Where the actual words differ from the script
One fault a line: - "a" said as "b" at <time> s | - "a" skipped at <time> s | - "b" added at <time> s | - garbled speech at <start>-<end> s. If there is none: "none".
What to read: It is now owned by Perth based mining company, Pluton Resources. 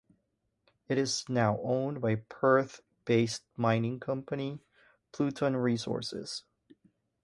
none